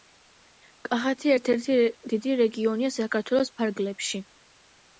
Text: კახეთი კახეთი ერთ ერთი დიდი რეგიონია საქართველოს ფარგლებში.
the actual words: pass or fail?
fail